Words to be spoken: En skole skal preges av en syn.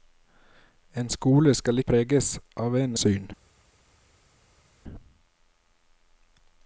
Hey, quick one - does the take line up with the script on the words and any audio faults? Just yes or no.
yes